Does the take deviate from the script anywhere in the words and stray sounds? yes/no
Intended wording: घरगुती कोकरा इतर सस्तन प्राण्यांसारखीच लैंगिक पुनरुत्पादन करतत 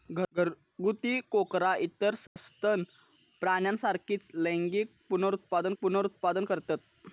yes